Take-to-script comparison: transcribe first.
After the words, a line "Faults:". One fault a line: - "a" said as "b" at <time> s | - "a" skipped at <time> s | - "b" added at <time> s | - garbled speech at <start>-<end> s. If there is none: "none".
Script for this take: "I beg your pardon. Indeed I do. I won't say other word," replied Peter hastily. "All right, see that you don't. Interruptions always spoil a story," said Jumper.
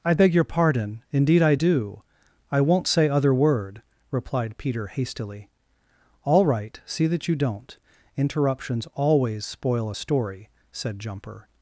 "I beg your pardon. Indeed I do. I won't say other word," replied Peter hastily. "All right, see that you don't. Interruptions always spoil a story," said Jumper.
Faults:
none